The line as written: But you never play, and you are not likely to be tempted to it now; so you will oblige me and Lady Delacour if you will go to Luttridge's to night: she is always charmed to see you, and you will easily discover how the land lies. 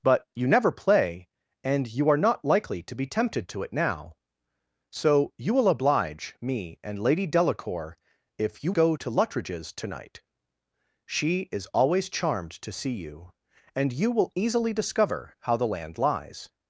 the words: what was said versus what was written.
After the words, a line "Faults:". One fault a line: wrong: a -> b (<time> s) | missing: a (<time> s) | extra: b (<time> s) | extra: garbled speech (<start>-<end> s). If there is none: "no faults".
But you never play, and you are not likely to be tempted to it now; so you will oblige me and Lady Delacour if you go to Luttridge's to night: she is always charmed to see you, and you will easily discover how the land lies.
Faults:
missing: will (8.7 s)